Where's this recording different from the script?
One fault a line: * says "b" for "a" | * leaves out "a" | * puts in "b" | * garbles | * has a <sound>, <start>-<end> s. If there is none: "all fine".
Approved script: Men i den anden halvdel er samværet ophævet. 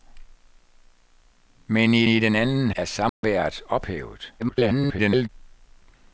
* puts in "i"
* leaves out "halvdel"
* has a dropout, 3.1-3.2 s
* garbles